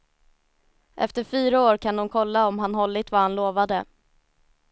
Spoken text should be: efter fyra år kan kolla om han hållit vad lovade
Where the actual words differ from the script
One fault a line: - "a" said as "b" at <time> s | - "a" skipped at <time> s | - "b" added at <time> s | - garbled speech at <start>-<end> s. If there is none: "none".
- "de" added at 1.9 s
- "han" added at 3.2 s